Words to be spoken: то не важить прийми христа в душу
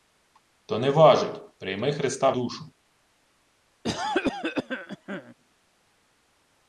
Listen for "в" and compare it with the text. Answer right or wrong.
wrong